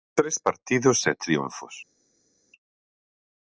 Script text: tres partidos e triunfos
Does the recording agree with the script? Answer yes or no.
yes